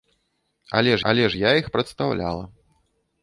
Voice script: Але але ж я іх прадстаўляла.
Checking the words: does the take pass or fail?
pass